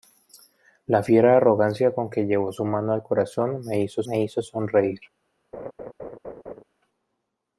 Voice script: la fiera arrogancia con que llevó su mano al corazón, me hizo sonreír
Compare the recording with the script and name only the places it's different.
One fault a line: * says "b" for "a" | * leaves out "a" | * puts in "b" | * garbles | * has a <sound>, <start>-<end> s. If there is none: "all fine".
* puts in "me hizo"
* has a laugh, 5.5-6.6 s